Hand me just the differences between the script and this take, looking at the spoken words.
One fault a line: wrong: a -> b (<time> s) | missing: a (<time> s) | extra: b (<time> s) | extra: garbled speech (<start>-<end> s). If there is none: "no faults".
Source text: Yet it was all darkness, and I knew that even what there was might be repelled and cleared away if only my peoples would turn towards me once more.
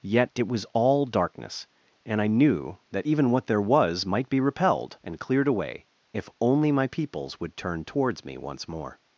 no faults